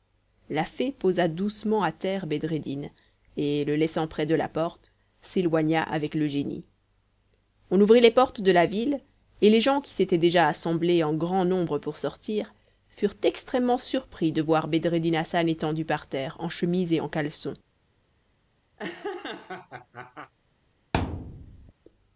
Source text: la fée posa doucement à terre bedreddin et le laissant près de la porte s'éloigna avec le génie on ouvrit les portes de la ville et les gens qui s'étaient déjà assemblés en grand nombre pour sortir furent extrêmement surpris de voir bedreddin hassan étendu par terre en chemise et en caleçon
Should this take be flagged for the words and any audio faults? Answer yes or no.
yes